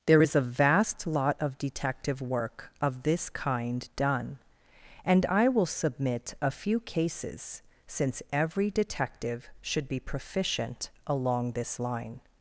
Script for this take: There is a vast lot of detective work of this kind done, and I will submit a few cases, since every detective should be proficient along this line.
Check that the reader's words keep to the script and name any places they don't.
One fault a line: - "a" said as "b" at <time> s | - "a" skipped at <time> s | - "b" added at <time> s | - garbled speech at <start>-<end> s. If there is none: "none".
none